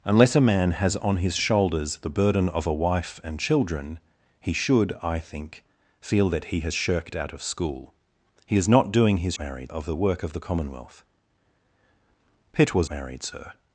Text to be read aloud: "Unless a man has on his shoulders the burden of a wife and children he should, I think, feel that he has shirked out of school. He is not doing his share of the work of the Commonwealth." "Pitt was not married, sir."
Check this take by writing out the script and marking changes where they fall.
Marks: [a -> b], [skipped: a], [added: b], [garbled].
"Unless a man has on his shoulders the burden of a wife and children he should, I think, feel that he has shirked out of school. He is not doing his [share -> married] of the work of the Commonwealth." "Pitt was [skipped: not] married, sir."